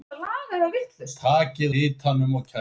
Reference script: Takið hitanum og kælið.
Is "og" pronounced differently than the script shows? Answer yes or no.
no